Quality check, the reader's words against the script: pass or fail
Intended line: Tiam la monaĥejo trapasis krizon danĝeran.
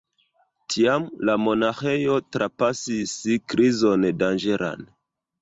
pass